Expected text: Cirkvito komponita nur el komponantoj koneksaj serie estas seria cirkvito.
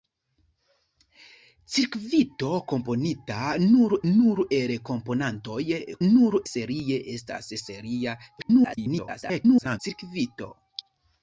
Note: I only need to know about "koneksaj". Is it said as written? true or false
false